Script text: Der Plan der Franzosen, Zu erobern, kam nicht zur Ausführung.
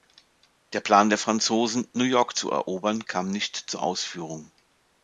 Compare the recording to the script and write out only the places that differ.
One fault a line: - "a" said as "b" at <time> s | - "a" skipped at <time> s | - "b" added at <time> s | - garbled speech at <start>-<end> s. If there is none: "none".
- "New York" added at 1.9 s